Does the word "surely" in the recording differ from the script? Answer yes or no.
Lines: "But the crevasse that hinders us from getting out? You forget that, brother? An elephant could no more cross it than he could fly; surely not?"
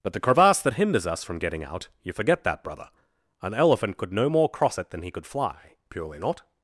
yes